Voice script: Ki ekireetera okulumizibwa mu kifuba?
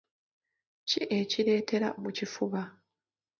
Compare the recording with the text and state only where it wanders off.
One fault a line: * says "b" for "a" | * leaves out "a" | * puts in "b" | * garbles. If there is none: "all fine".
* leaves out "okulumizibwa"